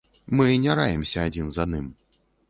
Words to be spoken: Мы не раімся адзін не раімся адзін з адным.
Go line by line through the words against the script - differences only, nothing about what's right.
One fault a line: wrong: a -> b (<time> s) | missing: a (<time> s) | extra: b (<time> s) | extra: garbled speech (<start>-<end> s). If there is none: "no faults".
missing: не раімся адзін (1.5 s)